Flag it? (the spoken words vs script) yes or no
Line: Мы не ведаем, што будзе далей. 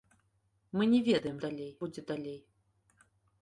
yes